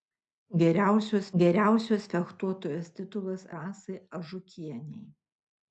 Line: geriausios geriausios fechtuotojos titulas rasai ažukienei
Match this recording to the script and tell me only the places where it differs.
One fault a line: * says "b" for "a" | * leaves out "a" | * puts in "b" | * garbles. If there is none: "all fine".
all fine